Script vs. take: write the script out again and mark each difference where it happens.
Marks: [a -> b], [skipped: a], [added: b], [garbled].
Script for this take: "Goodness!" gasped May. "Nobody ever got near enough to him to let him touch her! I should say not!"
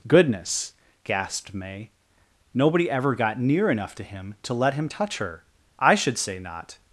"Goodness!" gasped May. "Nobody ever got near enough to him to let him touch her! I should say not!"